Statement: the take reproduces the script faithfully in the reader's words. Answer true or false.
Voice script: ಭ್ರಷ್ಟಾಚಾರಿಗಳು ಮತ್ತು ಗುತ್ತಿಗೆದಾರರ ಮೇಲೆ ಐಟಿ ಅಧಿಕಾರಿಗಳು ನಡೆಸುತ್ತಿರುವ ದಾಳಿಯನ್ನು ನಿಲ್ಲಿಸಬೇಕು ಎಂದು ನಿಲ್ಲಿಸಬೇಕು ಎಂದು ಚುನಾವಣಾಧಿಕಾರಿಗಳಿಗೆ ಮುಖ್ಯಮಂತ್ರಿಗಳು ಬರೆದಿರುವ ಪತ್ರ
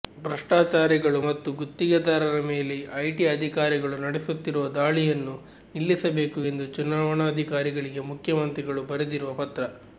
false